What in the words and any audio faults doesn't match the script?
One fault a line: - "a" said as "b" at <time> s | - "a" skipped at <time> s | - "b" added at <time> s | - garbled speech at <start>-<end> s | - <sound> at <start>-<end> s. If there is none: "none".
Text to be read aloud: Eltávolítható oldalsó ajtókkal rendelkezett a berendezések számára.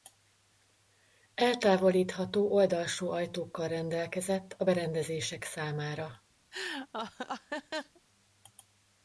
- laugh at 6.5-8.0 s